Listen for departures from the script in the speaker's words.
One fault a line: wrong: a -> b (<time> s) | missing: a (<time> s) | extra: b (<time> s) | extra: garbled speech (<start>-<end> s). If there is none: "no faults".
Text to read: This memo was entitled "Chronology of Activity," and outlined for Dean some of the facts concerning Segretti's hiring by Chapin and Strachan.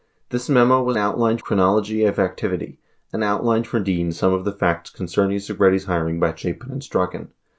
wrong: entitled -> outlined (1.0 s)